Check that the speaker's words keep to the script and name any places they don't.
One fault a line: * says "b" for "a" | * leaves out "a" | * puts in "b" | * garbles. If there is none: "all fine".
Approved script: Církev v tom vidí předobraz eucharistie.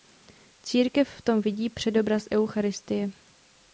all fine